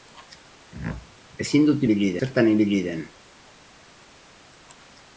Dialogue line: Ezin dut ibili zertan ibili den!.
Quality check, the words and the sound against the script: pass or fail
pass